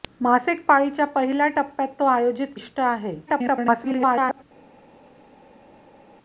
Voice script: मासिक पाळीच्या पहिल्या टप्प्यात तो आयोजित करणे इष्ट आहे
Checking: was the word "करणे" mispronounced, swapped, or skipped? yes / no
yes